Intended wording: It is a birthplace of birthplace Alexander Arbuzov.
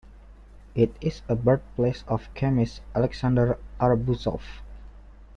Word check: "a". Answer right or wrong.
right